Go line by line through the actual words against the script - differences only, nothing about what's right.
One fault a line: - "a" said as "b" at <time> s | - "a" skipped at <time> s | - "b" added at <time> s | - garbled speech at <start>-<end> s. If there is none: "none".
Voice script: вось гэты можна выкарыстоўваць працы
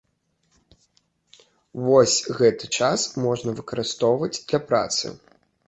- "час" added at 2.8 s
- "для" added at 4.5 s